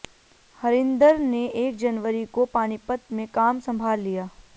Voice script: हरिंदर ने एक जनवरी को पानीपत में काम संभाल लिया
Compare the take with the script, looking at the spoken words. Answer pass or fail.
pass